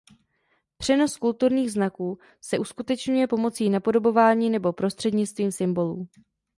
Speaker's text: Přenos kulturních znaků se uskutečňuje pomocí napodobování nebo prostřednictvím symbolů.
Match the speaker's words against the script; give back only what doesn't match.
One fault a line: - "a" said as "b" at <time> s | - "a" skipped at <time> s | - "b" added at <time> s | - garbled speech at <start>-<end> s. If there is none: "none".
none